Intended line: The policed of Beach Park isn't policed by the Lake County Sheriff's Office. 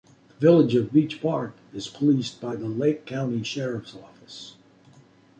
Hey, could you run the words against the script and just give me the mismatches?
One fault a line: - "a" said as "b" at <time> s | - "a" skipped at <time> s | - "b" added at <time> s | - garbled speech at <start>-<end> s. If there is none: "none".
- "policed" said as "village" at 0.5 s
- "isn't" said as "is" at 1.8 s